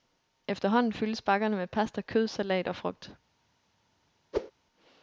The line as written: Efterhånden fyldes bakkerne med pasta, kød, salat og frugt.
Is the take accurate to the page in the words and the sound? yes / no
no